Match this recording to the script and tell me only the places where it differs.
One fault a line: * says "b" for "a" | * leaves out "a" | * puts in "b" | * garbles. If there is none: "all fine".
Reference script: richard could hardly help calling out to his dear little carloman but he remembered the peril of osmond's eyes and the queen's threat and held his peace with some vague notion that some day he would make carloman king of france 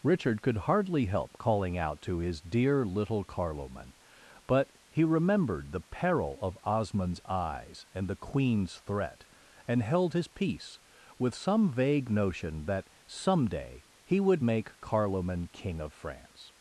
all fine